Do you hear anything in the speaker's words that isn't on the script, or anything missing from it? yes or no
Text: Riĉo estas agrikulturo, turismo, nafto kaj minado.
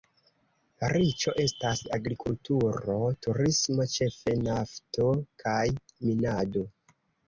yes